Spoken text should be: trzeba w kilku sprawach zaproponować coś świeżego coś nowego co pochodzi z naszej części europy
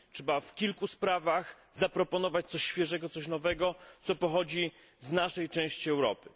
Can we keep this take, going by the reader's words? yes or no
yes